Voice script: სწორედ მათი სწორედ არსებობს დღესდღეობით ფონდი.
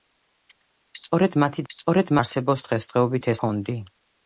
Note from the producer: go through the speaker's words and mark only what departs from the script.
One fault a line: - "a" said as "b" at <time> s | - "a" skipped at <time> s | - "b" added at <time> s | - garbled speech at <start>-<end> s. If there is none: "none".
none